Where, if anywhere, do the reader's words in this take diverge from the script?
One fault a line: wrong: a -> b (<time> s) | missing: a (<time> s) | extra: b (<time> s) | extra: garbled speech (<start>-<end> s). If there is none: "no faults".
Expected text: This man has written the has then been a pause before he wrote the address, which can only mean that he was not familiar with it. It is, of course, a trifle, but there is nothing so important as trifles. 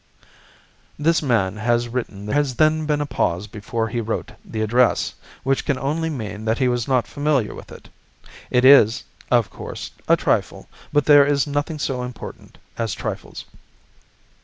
no faults